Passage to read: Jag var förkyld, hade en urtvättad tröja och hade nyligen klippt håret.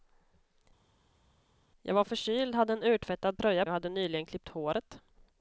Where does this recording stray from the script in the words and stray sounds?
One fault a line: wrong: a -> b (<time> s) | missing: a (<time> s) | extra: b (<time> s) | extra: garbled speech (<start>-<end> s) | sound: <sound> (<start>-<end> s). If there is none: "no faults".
no faults